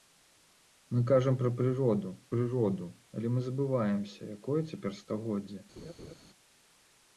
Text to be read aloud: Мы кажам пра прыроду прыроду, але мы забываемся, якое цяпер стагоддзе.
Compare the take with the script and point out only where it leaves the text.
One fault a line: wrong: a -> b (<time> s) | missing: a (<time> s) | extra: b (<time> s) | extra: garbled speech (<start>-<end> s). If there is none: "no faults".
no faults